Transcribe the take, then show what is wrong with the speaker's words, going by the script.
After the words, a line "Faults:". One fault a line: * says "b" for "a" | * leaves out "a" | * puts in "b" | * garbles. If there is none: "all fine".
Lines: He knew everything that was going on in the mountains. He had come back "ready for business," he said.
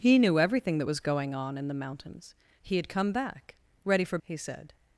He knew everything that was going on in the mountains. He had come back "ready for," he said.
Faults:
* leaves out "business"